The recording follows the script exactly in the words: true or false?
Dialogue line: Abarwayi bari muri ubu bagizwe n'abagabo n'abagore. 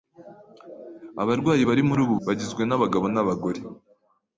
true